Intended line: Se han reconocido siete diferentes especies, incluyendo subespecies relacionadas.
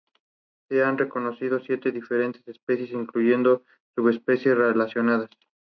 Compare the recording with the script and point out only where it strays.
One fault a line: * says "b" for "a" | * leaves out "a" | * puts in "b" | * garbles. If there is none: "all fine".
all fine